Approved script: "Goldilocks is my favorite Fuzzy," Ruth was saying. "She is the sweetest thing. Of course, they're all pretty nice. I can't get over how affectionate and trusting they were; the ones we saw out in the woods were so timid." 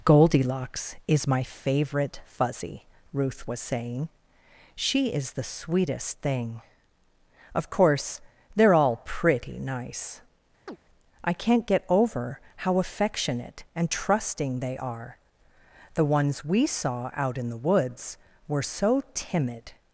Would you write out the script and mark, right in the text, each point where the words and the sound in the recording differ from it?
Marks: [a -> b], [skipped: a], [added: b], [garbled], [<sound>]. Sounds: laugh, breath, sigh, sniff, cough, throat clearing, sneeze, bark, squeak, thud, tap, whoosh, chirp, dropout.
"Goldilocks is my favorite Fuzzy," Ruth was saying. "She is the sweetest thing. Of course, they're all pretty nice. [chirp] I can't get over how affectionate and trusting they [were; -> are] the ones we saw out in the woods were so timid."